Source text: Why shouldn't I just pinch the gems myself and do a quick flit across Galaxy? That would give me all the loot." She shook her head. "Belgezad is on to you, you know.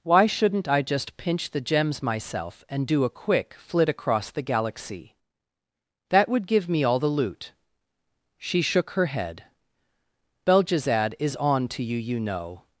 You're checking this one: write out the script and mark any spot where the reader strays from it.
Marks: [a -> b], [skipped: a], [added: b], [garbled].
Why shouldn't I just pinch the gems myself and do a quick flit across [added: the] Galaxy? That would give me all the loot." She shook her head. "Belgezad is on to you, you know.